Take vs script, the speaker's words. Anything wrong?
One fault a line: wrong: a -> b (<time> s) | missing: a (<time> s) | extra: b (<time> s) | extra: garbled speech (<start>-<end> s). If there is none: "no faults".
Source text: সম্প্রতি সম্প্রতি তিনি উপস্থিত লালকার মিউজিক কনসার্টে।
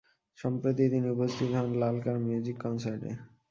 missing: সম্প্রতি (0.8 s)
extra: হন (1.6 s)